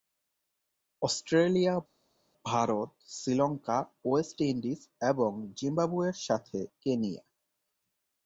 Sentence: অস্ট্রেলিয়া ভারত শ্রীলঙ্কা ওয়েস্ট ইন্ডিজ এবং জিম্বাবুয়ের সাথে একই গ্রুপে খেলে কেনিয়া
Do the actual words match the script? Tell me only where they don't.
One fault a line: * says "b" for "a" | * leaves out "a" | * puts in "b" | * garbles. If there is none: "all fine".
* leaves out "একই গ্রুপে খেলে"